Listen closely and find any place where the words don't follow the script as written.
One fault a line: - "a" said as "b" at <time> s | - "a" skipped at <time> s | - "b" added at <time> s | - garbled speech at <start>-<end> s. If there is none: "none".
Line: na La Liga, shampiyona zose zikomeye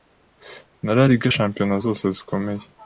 none